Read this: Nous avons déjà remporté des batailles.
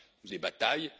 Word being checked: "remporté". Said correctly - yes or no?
no